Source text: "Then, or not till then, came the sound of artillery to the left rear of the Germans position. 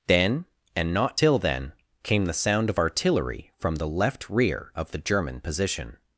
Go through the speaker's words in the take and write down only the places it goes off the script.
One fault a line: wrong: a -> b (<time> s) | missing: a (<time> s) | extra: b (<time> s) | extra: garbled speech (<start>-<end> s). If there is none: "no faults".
wrong: or -> and (0.8 s)
wrong: to -> from (3.6 s)
wrong: Germans -> German (5.0 s)